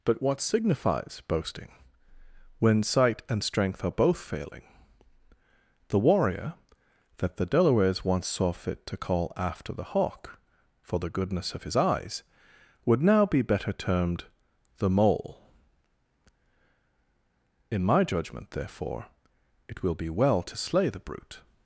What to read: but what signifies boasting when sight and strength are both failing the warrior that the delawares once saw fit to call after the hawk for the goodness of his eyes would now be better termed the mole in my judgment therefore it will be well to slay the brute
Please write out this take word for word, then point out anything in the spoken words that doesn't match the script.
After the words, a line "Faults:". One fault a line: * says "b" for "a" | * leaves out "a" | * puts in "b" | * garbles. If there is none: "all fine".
but what signifies boasting when sight and strength are both failing the warrior that the delawares once saw fit to call after the hawk for the goodness of his eyes would now be better termed the mole in my judgment therefore it will be well to slay the brute
Faults:
all fine